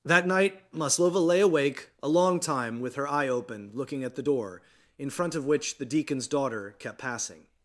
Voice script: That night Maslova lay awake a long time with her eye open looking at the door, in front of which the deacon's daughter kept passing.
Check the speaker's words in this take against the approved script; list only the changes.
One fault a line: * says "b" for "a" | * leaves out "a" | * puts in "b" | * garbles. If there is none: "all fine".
all fine